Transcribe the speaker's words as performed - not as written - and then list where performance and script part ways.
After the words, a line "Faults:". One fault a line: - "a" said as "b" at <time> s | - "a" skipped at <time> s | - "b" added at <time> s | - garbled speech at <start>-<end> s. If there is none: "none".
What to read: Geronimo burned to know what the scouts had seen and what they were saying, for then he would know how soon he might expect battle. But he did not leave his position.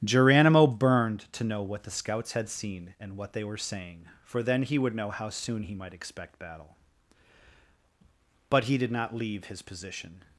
Geronimo burned to know what the scouts had seen and what they were saying, for then he would know how soon he might expect battle. But he did not leave his position.
Faults:
none